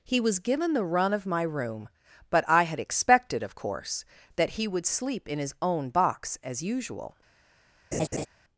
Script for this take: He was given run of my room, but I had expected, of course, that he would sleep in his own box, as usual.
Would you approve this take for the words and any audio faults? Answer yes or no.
no